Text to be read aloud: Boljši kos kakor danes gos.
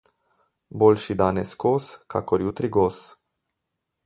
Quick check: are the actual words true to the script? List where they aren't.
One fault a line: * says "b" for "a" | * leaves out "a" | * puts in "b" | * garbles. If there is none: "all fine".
* puts in "danes"
* says "jutri" for "danes"